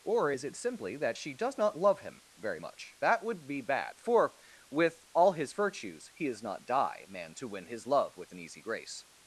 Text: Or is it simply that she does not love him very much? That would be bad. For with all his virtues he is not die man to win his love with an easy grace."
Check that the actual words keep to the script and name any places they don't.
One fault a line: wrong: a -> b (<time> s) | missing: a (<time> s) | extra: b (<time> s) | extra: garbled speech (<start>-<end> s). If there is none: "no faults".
no faults